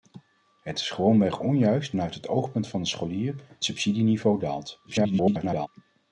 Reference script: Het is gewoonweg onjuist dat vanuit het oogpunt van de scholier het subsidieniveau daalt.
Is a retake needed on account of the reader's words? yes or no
yes